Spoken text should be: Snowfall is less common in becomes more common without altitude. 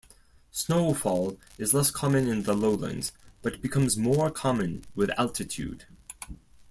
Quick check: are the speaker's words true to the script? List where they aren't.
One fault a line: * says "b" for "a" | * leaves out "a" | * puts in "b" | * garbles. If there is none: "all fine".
* puts in "the lowlands but"
* says "with" for "without"